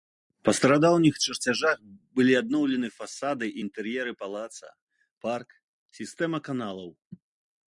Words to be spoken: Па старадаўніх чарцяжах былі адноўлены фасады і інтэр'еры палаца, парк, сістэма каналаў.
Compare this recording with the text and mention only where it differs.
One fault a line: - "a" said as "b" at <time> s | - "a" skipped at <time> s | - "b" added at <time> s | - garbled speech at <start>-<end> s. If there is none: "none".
none